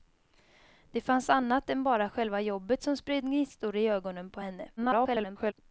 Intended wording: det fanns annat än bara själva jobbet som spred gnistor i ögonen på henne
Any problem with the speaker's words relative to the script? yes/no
yes